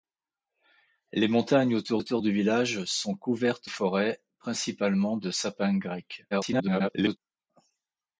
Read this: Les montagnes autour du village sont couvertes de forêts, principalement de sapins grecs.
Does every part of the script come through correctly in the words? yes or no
no